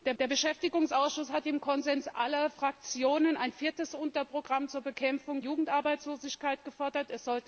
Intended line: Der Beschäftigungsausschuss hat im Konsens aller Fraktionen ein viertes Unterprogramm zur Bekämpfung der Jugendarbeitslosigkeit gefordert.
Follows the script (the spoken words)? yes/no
no